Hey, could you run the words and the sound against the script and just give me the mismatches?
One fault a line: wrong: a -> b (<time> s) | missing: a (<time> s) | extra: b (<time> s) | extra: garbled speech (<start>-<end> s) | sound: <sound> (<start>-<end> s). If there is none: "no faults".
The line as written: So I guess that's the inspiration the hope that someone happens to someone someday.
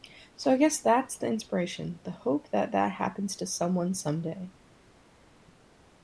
wrong: someone -> that (2.7 s)